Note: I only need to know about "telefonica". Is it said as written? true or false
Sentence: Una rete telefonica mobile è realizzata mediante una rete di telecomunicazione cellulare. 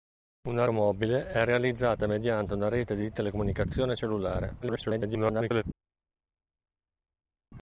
false